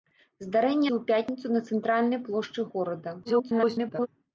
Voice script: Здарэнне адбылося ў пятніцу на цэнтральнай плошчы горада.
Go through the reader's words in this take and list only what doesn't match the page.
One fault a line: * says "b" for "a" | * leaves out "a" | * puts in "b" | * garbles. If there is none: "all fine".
* leaves out "адбылося"
* garbles